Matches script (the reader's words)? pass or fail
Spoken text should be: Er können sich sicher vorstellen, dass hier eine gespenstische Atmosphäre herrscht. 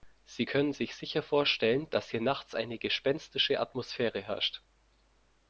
fail